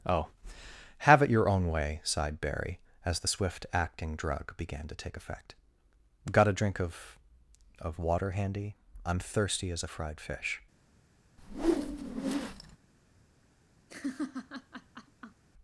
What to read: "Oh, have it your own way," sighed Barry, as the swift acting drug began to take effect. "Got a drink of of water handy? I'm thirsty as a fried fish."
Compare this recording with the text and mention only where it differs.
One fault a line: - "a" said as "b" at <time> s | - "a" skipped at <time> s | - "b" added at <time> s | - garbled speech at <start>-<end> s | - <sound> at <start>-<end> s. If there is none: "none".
- whoosh at 11.4-12.8 s
- laugh at 13.9-15.4 s